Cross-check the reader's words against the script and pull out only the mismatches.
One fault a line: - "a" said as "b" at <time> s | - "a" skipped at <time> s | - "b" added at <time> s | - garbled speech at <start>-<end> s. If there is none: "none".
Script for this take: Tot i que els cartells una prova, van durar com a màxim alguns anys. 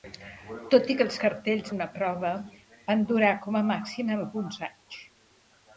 none